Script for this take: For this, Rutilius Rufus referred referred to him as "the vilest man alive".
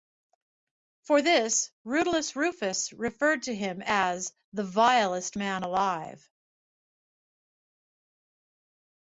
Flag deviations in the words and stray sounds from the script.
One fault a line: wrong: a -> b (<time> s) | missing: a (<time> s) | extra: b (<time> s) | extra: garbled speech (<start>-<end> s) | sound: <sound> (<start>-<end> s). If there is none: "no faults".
missing: referred (3.4 s)